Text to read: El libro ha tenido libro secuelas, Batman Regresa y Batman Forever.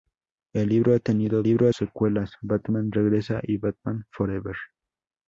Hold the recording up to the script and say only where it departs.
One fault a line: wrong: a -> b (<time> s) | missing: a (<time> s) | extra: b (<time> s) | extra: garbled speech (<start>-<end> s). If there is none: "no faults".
no faults